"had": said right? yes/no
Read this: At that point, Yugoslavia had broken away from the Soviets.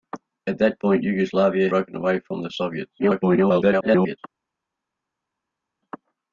no